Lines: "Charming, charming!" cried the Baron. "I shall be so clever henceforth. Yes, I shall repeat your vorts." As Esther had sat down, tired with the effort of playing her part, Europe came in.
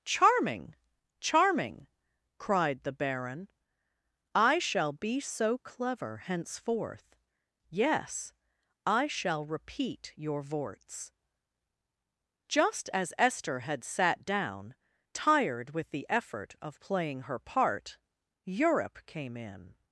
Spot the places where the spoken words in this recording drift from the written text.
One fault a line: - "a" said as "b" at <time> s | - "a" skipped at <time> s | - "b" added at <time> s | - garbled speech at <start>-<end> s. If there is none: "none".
- "Just" added at 12.5 s